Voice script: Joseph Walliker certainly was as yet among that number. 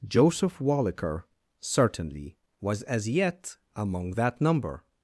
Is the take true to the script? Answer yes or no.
yes